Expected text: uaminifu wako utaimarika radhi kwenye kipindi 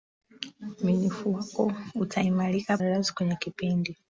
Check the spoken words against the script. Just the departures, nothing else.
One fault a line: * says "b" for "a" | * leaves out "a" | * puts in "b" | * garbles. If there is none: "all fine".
all fine